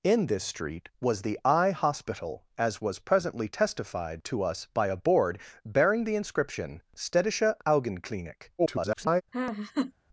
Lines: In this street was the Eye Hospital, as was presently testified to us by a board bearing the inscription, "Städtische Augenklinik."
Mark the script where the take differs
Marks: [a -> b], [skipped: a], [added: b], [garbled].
In this street was the Eye Hospital, as was presently testified to us by a board bearing the inscription, "Städtische Augenklinik." [garbled]